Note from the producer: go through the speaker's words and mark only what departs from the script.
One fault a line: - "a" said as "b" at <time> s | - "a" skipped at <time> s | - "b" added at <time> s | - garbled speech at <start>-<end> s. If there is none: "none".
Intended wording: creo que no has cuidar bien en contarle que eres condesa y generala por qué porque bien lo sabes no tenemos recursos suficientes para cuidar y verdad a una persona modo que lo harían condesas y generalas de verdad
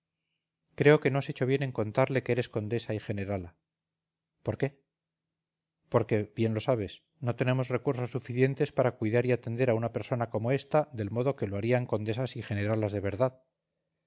- "cuidar" said as "hecho" at 1.3 s
- "verdad" said as "atender" at 9.3 s
- "como ésta del" added at 10.3 s